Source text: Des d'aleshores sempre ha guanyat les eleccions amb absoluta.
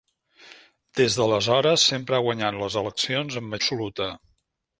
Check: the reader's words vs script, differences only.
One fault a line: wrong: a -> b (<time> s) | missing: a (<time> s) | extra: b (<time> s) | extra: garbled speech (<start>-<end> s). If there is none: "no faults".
no faults